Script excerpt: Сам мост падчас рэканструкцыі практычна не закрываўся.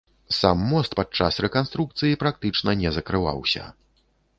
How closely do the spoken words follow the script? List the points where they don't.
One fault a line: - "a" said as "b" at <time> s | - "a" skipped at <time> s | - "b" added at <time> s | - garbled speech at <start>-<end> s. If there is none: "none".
none